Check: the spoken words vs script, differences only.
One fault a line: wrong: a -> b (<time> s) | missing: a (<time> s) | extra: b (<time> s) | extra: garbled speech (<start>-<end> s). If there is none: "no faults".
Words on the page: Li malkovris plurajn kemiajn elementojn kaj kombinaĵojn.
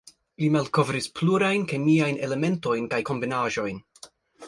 no faults